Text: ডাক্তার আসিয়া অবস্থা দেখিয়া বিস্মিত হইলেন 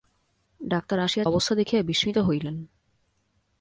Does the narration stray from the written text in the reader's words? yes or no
no